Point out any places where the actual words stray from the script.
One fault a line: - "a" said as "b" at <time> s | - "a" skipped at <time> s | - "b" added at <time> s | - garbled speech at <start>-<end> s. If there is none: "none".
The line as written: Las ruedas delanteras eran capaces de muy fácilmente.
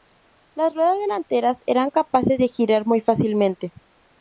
- "girar" added at 2.5 s